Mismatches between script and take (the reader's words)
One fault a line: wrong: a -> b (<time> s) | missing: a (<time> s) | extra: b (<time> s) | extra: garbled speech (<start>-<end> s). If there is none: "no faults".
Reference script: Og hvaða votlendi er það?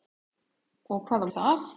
missing: votlendi (1.3 s)